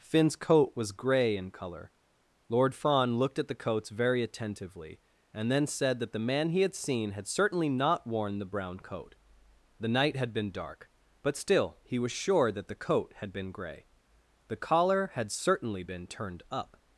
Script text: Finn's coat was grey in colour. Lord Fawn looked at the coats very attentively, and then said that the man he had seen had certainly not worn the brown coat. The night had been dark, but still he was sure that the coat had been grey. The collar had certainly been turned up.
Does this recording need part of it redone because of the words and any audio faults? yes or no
no